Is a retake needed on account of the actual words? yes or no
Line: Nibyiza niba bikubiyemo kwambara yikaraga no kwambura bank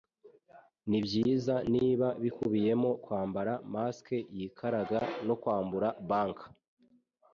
yes